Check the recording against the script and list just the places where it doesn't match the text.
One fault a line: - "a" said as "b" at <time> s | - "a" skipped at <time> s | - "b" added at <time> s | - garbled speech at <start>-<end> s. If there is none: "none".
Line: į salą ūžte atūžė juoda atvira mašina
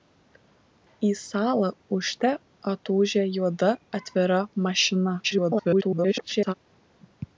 - garbled speech at 5.2-6.5 s